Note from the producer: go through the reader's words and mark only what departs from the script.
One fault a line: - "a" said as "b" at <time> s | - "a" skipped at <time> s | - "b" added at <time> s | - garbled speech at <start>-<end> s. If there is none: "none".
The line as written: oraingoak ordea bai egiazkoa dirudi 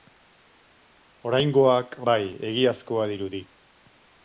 - "ordea" skipped at 1.9 s